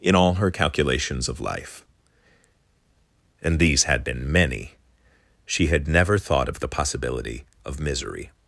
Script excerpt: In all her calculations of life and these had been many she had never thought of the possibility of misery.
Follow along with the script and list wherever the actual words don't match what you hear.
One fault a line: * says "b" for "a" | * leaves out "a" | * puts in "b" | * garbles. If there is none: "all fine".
all fine